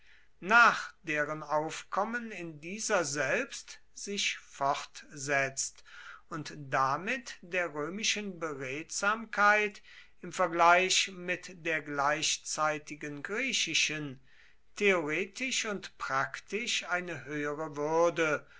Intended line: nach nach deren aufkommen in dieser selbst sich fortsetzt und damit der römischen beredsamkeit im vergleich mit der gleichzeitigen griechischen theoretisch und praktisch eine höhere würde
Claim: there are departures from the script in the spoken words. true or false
true